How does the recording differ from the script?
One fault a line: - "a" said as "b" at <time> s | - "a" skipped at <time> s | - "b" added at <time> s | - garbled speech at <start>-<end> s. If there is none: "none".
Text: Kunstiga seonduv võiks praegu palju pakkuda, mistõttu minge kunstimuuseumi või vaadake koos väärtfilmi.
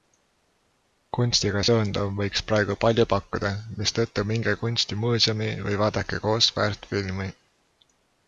none